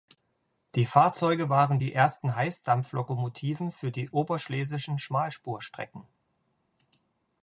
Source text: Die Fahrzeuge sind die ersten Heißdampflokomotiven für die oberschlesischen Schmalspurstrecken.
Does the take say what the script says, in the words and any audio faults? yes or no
no